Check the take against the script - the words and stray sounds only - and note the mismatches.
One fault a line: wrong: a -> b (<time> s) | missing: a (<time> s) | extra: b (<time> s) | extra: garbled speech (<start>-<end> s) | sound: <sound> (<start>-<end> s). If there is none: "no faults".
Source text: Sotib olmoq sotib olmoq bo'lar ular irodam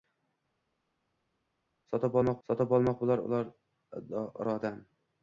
no faults